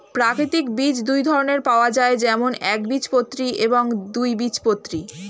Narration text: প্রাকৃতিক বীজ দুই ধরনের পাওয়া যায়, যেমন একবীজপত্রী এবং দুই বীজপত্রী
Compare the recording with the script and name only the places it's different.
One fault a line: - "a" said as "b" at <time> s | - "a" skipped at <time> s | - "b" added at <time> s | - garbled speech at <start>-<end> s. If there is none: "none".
none